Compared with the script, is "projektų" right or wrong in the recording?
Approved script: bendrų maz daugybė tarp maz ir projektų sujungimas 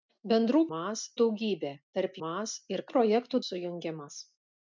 right